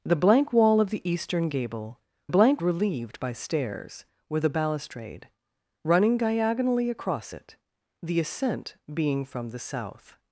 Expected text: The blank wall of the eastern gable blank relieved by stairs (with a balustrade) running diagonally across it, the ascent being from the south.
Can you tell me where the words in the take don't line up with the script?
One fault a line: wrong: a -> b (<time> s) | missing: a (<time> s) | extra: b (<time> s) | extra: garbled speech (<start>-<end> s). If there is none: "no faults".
no faults